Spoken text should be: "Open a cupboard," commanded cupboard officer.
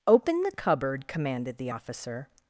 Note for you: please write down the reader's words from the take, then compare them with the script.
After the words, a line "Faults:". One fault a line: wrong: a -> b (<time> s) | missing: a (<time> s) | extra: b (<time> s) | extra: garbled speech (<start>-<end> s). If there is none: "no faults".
"Open the cupboard," commanded the officer.
Faults:
wrong: a -> the (0.4 s)
wrong: cupboard -> the (1.6 s)